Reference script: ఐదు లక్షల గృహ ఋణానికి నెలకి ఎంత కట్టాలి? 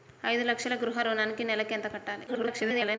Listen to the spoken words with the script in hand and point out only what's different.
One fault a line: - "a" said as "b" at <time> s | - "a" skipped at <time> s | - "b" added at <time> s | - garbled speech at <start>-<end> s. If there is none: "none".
- garbled speech at 2.3-3.0 s